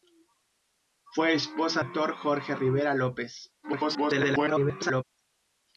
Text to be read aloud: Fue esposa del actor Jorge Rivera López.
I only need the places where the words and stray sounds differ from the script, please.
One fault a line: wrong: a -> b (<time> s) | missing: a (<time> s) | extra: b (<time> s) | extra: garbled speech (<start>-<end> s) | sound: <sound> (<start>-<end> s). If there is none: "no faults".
missing: del (1.8 s)
extra: garbled speech (3.6-5.0 s)